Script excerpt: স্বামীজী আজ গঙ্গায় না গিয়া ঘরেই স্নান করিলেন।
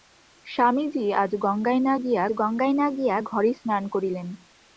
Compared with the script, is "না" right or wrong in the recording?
right